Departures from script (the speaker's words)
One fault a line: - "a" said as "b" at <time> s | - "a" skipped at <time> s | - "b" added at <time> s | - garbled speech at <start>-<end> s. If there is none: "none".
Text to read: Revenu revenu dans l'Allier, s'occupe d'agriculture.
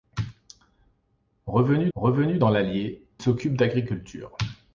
none